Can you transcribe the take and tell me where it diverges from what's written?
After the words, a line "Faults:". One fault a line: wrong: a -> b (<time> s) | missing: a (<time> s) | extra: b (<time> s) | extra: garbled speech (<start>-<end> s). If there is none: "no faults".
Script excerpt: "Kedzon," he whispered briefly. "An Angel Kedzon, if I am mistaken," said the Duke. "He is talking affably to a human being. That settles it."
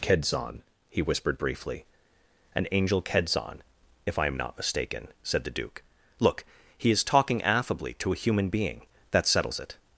"Kedzon," he whispered briefly. "An Angel Kedzon, if I am not mistaken," said the Duke. "Look, he is talking affably to a human being. That settles it."
Faults:
extra: not (4.3 s)
extra: Look (6.2 s)